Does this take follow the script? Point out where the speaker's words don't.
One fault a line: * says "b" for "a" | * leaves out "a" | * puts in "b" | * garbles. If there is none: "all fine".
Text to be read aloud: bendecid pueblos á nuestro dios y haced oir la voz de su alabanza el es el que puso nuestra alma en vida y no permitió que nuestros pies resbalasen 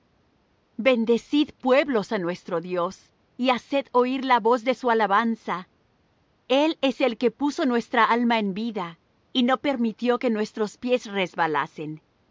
all fine